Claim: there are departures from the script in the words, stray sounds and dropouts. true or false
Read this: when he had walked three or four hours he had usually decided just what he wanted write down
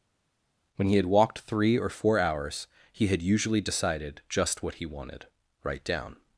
false